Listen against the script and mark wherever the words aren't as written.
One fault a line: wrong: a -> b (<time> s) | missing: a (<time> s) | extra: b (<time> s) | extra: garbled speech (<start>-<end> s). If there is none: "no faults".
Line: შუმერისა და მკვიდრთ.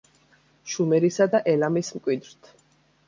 extra: ელამის (1.6 s)